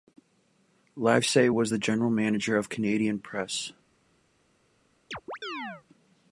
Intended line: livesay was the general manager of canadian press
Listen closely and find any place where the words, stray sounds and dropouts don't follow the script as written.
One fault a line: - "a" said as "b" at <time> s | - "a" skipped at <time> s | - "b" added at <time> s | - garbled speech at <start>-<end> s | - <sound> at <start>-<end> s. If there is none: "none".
- chirp at 5.1-5.8 s